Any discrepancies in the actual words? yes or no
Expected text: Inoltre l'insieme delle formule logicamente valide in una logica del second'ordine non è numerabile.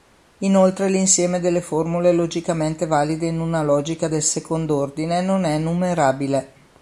no